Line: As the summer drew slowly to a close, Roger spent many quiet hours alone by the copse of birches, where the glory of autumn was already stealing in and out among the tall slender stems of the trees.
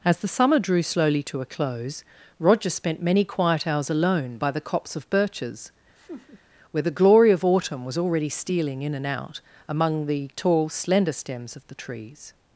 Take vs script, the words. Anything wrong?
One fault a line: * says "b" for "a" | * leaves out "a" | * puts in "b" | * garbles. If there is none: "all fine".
all fine